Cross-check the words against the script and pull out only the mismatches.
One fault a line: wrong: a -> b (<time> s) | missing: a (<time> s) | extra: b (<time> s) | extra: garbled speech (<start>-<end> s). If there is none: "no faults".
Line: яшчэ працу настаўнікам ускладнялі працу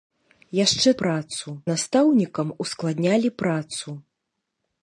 no faults